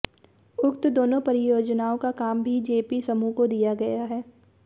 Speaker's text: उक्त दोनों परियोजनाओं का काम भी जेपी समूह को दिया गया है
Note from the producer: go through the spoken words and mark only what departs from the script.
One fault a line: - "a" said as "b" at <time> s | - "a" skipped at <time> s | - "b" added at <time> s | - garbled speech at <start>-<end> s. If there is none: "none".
none